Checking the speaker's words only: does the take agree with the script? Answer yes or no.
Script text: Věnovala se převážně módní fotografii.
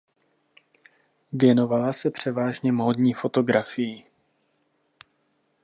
yes